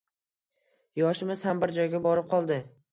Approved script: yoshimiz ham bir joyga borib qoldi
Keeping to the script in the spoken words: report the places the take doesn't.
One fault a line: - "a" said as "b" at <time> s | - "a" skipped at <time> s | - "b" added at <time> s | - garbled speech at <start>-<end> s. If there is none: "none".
none